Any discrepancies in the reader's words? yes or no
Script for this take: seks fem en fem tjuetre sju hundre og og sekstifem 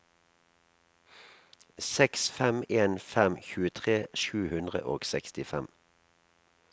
yes